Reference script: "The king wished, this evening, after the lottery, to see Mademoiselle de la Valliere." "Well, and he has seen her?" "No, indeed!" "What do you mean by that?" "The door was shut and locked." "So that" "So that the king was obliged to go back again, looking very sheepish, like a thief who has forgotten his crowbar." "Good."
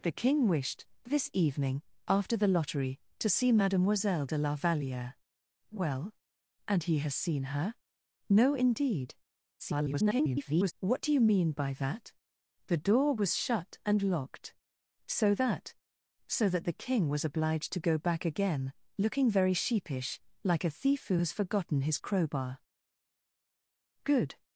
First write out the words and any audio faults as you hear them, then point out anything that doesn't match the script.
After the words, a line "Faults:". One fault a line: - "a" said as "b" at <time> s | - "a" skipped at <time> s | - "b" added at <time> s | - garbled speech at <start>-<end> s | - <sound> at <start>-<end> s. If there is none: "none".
"The king wished, this evening, after the lottery, to see Mademoiselle de la Valliere." "Well, and he has seen her?" "No, indeed!" [garbled] "What do you mean by that?" "The door was shut and locked." "So that" "So that the king was obliged to go back again, looking very sheepish, like a thief who has forgotten his crowbar." "Good."
Faults:
- garbled speech at 9.6-10.7 s